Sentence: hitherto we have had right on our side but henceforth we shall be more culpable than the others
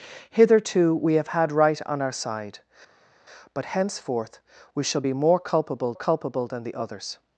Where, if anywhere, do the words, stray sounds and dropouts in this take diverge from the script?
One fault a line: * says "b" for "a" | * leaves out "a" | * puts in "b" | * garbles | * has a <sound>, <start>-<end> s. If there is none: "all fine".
* puts in "culpable"